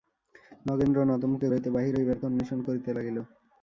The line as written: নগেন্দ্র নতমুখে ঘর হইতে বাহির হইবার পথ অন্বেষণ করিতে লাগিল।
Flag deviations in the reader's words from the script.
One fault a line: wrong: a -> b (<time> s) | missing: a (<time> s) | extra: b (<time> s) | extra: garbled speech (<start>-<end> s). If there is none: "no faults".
missing: ঘর (1.5 s)
missing: পথ (2.2 s)